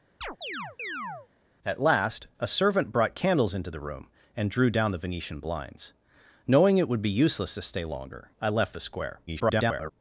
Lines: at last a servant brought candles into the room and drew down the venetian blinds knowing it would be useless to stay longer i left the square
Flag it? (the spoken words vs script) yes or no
yes